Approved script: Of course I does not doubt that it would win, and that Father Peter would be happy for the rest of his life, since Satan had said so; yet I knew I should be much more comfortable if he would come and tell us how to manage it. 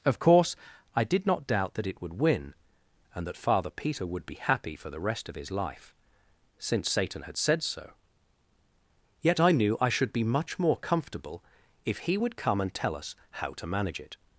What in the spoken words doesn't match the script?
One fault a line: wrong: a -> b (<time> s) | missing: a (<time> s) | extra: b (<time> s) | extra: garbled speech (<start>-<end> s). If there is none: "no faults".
wrong: does -> did (1.0 s)